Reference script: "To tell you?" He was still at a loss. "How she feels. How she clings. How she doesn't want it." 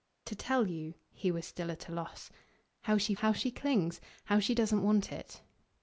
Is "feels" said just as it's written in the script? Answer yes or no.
no